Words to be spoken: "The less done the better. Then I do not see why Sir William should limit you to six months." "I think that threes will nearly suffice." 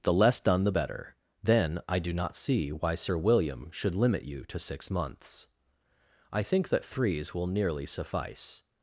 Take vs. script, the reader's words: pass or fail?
pass